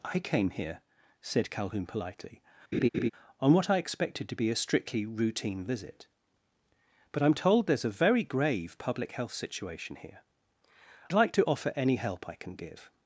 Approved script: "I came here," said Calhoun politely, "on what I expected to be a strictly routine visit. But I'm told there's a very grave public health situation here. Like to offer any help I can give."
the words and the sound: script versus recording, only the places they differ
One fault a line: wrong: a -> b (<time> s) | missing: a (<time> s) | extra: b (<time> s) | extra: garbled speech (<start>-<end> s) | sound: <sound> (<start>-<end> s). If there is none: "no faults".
sound: laugh (2.7-3.1 s)